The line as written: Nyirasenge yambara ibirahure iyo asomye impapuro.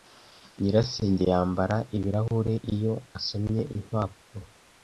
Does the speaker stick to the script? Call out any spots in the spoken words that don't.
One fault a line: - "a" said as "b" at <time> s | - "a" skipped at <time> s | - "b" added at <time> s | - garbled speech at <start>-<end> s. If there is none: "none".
none